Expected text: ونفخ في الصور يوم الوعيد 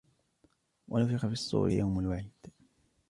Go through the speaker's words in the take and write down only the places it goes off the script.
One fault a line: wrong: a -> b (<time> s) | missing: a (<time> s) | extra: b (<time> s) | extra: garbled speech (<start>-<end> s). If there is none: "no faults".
no faults